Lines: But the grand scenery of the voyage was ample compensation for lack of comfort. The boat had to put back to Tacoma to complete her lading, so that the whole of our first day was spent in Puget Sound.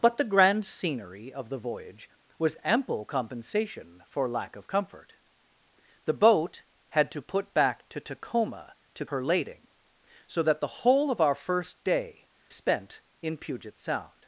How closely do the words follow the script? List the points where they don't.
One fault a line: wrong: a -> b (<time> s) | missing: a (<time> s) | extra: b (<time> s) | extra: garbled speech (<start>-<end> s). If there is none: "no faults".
missing: complete (9.1 s)
missing: was (12.3 s)